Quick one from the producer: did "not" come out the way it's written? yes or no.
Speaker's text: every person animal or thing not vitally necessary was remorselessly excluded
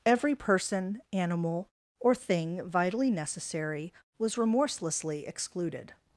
no